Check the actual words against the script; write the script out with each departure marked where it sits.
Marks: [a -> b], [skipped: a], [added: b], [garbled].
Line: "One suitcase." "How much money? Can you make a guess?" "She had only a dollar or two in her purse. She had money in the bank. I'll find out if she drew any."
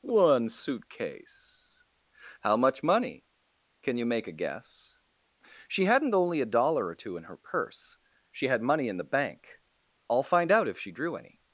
"One suitcase." "How much money? Can you make a guess?" "She [had -> hadn't] only a dollar or two in her purse. She had money in the bank. I'll find out if she drew any."